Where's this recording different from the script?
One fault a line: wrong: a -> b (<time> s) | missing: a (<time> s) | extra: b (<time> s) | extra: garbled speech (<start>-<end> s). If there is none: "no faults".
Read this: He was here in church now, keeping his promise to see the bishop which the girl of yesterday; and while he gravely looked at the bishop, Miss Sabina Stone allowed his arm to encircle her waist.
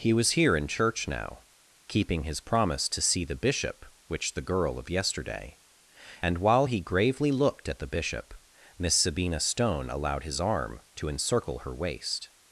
no faults